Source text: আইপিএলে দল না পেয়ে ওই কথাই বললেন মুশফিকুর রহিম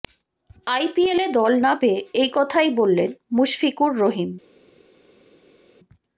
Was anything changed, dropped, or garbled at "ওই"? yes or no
yes